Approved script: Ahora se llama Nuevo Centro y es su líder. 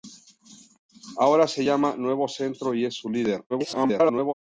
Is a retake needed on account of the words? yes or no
yes